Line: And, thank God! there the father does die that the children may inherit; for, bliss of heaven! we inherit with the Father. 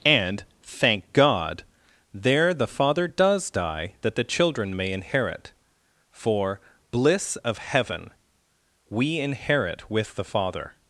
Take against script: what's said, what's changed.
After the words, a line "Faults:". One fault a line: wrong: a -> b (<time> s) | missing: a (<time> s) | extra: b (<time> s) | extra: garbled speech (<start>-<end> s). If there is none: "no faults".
And, thank God! there the father does die that the children may inherit; for, bliss of heaven! we inherit with the Father.
Faults:
no faults